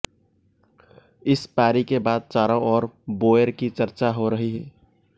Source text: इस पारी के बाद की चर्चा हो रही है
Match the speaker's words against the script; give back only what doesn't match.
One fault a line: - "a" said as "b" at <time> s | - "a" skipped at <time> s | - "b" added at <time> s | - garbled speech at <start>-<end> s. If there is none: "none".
- "चारों ओर बोएर" added at 2.3 s